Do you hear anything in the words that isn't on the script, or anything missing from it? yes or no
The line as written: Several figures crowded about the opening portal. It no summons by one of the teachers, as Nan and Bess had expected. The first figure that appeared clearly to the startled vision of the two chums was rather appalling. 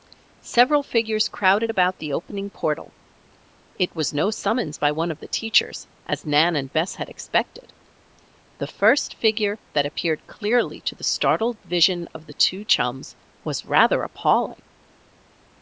yes